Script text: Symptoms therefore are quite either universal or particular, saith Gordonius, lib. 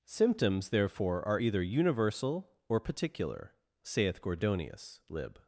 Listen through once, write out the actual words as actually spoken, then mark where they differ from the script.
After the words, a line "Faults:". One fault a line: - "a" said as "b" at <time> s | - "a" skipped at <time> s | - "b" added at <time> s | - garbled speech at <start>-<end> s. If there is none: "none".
Symptoms therefore are either universal or particular, saith Gordonius, lib.
Faults:
- "quite" skipped at 1.4 s